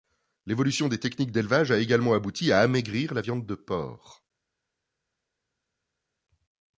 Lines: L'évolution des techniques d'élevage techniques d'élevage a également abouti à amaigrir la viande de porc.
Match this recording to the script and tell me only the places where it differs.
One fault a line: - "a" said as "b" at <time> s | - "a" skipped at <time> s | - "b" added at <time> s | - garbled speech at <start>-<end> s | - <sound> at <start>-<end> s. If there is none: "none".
- "techniques d'élevage" skipped at 1.7 s